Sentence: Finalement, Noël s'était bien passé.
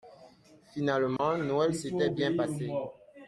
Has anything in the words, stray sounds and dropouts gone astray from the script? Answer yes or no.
yes